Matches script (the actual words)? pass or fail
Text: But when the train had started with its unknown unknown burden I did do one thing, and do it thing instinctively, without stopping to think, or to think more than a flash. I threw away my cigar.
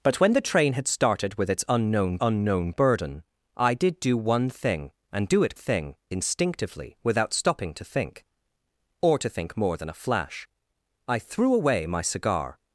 pass